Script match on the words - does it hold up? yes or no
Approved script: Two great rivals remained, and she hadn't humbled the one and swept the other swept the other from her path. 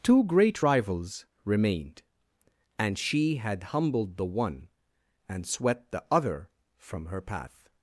no